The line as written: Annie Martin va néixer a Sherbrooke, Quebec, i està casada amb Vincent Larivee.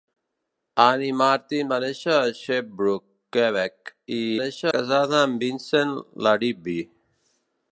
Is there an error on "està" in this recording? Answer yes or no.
yes